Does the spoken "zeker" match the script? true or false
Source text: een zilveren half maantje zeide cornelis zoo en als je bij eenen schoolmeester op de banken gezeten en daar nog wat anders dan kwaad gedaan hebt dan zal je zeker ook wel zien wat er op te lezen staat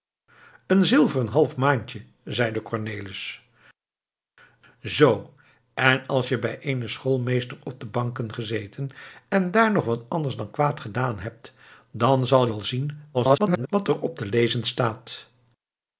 false